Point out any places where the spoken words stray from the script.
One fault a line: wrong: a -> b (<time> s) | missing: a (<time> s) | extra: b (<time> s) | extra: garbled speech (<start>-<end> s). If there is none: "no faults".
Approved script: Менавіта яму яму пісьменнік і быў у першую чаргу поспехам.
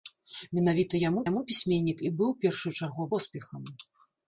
no faults